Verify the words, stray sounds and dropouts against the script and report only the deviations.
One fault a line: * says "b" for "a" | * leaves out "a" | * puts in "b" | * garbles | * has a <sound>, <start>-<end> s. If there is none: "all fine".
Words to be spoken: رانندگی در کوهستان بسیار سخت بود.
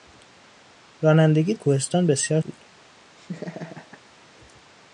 * leaves out "در"
* leaves out "سخت"
* has a laugh, 3.2-4.0 s